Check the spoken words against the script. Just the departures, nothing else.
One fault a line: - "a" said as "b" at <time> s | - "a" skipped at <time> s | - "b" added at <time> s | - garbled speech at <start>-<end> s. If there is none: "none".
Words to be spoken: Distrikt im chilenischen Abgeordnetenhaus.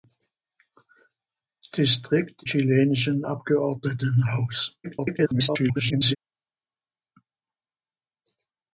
- "im" skipped at 2.4 s
- garbled speech at 4.8-6.2 s